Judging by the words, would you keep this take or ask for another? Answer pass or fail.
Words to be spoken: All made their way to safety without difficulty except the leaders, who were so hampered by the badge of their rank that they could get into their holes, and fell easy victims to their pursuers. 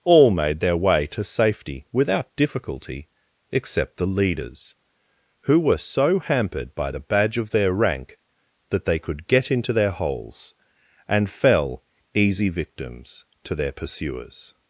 pass